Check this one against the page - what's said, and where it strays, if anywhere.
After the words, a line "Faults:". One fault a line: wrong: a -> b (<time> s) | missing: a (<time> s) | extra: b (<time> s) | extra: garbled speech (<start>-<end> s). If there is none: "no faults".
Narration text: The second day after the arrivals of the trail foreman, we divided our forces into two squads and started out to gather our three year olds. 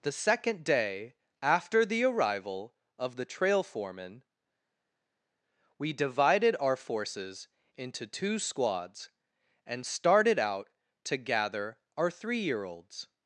The second day after the arrival of the trail foreman, we divided our forces into two squads and started out to gather our three year olds.
Faults:
wrong: arrivals -> arrival (2.0 s)